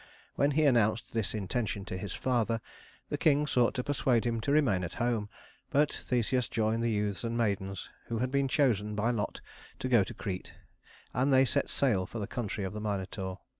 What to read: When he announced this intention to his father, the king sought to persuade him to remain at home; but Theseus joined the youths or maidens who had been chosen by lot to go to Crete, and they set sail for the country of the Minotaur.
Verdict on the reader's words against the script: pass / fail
fail